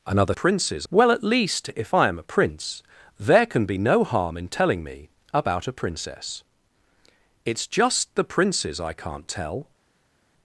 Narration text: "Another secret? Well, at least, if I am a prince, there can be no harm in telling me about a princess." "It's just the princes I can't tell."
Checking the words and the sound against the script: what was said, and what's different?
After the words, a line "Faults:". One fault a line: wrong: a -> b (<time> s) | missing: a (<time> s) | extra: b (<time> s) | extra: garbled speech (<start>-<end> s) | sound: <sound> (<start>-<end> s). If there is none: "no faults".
"Another princes? Well, at least, if I am a prince, there can be no harm in telling me about a princess." "It's just the princes I can't tell."
Faults:
wrong: secret -> princes (0.3 s)